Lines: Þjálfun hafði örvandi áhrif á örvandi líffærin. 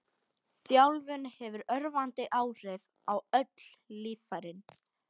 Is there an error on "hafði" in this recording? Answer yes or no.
yes